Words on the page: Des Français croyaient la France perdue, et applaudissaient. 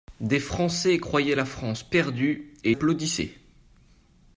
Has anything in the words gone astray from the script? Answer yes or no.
no